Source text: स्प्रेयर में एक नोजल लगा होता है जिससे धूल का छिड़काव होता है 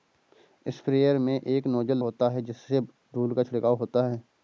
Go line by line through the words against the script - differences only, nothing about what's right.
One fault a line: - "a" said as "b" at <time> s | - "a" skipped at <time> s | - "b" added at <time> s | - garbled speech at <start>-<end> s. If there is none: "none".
- "लगा" skipped at 2.0 s